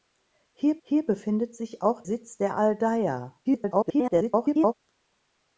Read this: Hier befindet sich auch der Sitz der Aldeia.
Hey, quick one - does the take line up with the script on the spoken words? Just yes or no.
no